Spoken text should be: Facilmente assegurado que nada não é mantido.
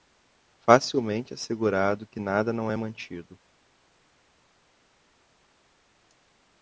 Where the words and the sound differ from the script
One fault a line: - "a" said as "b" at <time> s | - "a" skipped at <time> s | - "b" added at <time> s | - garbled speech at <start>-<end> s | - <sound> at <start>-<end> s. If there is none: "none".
none